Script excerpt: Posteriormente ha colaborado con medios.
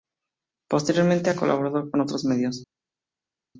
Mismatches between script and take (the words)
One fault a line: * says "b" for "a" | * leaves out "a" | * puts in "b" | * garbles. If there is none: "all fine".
* puts in "otros"